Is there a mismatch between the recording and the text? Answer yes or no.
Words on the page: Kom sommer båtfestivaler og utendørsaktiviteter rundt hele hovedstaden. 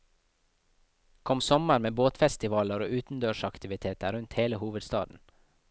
yes